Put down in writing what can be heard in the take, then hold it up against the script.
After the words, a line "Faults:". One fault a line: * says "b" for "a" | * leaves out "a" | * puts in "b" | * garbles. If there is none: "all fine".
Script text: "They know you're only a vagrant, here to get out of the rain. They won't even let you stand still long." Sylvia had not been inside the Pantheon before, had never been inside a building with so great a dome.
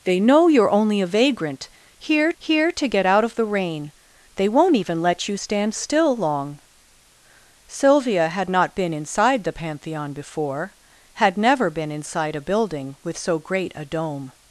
"They know you're only a vagrant, here here to get out of the rain. They won't even let you stand still long." Sylvia had not been inside the Pantheon before, had never been inside a building with so great a dome.
Faults:
* puts in "here"